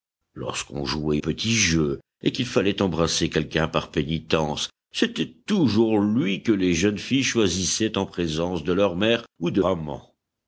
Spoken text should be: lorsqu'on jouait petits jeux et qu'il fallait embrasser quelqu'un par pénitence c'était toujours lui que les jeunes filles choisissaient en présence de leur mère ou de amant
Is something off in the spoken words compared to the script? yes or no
no